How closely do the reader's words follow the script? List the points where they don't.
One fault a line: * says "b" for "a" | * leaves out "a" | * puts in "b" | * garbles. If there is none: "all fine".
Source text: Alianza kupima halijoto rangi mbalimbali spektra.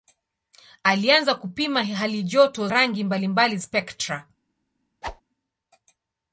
all fine